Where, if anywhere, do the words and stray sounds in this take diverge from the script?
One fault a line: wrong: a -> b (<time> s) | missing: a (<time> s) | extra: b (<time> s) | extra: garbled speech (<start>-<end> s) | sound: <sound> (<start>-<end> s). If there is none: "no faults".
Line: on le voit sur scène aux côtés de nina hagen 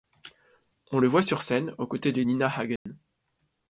sound: dropout (2.8-2.9 s)